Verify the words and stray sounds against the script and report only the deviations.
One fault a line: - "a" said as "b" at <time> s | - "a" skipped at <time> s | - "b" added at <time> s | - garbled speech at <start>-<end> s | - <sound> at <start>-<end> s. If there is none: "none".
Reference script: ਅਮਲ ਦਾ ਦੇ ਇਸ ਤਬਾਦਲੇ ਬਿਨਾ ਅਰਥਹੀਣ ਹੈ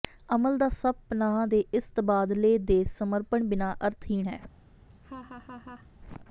- "ਸਭ ਪਨਾਹ" added at 0.7 s
- "ਦੇ ਸਮਰਪਣ" added at 2.6 s
- laugh at 4.9-5.9 s